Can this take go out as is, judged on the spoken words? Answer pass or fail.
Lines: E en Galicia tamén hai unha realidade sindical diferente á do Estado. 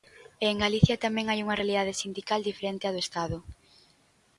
pass